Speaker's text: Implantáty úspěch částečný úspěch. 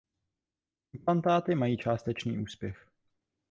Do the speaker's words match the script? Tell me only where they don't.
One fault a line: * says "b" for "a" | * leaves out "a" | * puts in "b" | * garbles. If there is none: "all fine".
* says "mají" for "úspěch"